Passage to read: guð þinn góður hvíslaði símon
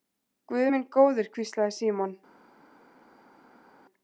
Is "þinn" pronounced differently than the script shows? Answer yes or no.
yes